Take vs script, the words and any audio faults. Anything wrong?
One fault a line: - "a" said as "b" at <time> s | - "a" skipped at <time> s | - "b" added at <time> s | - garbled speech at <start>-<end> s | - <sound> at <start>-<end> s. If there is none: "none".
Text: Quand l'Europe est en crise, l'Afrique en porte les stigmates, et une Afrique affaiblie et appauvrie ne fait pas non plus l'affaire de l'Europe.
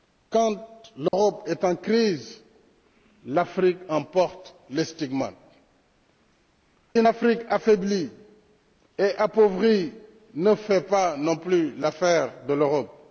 - dropout at 1.1-1.1 s
- "et" skipped at 5.3 s